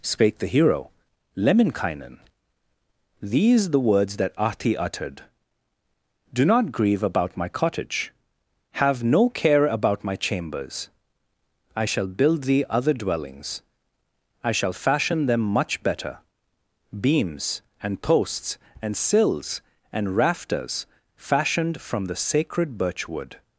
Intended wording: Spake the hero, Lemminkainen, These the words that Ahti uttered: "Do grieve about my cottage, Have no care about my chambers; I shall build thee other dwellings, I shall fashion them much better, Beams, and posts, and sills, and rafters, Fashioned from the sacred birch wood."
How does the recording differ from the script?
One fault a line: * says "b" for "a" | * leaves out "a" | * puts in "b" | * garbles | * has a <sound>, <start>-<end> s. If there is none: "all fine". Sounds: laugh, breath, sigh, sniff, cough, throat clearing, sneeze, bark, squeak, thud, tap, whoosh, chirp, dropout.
* puts in "not"